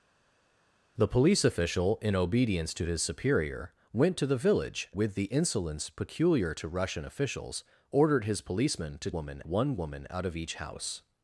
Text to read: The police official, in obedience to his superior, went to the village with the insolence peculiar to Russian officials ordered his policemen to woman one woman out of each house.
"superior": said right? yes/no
yes